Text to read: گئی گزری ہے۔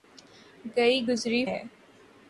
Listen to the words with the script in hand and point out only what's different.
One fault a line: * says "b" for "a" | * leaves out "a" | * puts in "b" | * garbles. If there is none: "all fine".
all fine